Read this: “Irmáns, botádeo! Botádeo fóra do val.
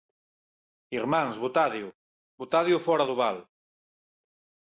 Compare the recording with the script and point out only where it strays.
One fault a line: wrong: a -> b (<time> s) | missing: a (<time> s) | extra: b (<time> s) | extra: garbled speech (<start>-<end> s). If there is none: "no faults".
no faults